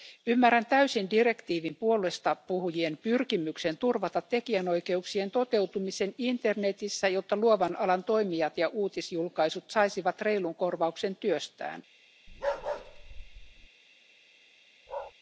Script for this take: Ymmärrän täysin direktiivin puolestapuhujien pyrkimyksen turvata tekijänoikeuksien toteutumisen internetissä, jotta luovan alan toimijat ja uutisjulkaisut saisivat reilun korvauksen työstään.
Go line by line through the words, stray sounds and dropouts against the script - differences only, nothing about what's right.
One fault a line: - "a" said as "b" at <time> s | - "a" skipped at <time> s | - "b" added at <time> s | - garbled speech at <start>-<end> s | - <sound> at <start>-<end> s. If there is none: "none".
- bark at 12.3-13.7 s
- bark at 14.9-15.1 s